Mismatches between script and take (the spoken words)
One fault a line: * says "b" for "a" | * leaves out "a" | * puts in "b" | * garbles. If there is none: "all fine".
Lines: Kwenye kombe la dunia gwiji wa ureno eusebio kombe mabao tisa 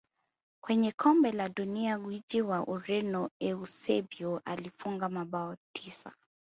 * says "alifunga" for "kombe"